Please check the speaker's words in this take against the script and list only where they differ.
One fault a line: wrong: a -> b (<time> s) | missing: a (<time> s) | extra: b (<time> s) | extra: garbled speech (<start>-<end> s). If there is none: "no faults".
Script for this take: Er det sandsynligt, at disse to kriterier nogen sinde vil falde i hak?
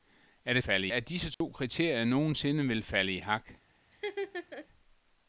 wrong: sandsynligt -> falde (0.6 s)